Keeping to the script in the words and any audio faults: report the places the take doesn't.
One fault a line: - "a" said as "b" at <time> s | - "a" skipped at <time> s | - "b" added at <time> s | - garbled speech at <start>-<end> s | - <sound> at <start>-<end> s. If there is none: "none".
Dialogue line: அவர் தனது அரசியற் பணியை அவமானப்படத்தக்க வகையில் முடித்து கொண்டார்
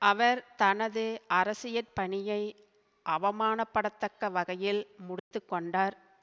- dropout at 5.2-5.3 s